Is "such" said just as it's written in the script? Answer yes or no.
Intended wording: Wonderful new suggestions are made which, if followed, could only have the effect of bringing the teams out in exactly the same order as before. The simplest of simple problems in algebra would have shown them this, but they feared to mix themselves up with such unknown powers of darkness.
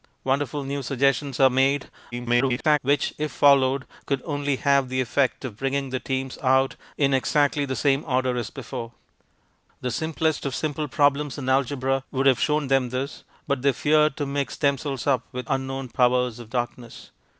no